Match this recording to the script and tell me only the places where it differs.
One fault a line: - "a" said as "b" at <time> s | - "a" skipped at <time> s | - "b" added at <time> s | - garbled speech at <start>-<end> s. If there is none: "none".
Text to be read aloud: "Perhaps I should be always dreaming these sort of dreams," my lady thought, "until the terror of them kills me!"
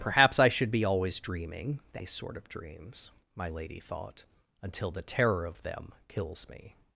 none